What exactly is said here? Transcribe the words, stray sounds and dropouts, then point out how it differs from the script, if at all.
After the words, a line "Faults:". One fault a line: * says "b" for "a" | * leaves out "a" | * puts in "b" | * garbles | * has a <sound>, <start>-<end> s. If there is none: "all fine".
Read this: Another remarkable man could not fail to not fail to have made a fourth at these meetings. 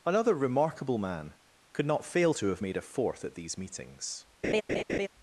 Another remarkable man could not fail to have made a fourth at these meetings.
Faults:
* leaves out "not fail to"
* has a laugh, 4.4-5.1 s